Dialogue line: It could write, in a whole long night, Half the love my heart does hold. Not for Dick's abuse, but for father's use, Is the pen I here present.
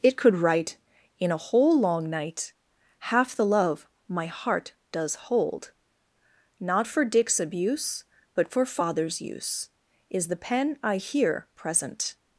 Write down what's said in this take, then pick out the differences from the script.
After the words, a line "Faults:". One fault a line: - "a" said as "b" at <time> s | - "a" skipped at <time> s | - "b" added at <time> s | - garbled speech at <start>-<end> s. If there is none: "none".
It could write, in a whole long night, Half the love my heart does hold. Not for Dick's abuse, but for father's use, Is the pen I here present.
Faults:
none